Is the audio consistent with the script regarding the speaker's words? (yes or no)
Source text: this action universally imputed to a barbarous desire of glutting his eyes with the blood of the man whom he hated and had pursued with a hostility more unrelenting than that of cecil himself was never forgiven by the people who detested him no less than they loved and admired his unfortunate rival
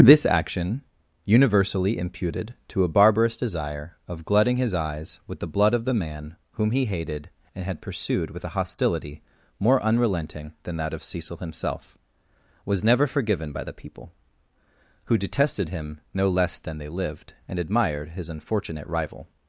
no